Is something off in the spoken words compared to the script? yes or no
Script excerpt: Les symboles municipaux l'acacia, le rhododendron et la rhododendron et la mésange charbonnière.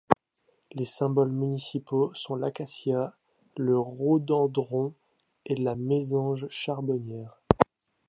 yes